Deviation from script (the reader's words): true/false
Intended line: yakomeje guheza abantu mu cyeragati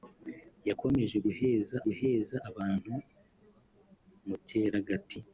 true